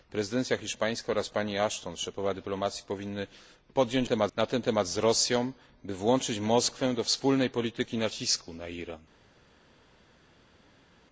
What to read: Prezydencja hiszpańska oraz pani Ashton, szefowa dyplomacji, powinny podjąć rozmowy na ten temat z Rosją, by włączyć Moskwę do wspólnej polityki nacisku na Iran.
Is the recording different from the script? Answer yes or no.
yes